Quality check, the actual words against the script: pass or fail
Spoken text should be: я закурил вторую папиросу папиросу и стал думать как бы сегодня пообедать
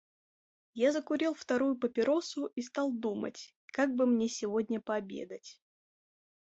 fail